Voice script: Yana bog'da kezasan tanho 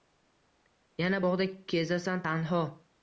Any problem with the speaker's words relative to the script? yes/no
no